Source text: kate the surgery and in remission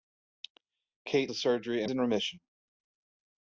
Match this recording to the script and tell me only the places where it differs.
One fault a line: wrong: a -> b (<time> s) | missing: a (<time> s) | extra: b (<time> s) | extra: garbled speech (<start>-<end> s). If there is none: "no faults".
no faults